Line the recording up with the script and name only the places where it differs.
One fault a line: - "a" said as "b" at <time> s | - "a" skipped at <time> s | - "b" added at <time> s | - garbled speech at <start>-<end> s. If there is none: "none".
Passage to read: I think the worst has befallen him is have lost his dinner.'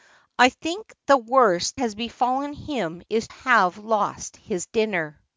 none